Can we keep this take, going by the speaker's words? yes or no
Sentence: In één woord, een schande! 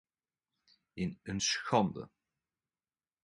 no